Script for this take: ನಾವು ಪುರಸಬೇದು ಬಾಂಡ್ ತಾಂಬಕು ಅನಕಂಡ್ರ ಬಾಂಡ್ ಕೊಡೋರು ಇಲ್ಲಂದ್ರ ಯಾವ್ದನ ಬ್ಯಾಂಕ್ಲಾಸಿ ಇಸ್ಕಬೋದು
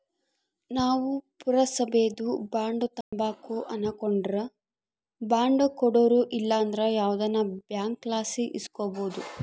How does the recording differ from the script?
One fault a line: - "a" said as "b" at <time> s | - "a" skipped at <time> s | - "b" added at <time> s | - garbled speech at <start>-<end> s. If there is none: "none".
none